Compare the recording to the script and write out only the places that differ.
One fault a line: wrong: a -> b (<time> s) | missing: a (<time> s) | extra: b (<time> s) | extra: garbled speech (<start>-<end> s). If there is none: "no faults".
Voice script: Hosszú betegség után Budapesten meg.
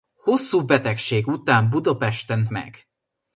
no faults